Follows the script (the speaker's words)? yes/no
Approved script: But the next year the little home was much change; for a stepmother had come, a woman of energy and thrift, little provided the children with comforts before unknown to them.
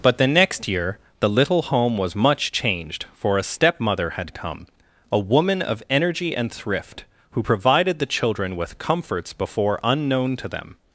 no